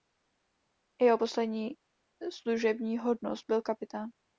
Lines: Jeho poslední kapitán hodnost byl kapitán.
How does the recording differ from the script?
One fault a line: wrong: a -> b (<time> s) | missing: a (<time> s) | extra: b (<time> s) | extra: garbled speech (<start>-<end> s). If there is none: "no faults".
wrong: kapitán -> služební (2.3 s)